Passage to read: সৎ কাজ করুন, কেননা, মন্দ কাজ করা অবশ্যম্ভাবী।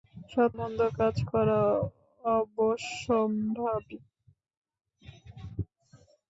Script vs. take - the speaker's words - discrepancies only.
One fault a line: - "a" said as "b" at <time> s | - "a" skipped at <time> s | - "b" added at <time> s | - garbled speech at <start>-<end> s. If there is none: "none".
- "কাজ করুন কেননা" skipped at 0.5 s